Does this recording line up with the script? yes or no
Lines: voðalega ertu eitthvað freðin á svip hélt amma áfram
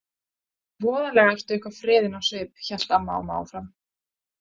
no